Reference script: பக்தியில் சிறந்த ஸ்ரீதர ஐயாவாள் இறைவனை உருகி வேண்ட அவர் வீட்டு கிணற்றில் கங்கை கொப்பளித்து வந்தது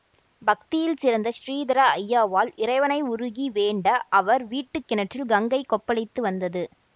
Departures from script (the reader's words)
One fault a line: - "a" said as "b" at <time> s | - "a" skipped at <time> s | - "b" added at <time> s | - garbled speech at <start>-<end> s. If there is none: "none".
none